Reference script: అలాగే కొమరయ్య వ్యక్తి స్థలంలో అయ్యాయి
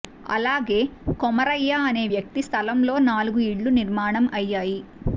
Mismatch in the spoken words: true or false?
true